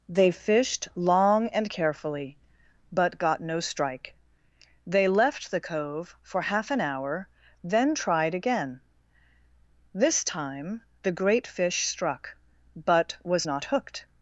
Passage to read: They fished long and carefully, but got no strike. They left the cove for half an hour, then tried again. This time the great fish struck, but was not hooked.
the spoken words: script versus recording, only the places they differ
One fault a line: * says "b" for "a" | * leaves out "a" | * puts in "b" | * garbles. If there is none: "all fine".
all fine